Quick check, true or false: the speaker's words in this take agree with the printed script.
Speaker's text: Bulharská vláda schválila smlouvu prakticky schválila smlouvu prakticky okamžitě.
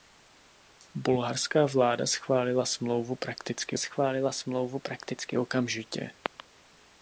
true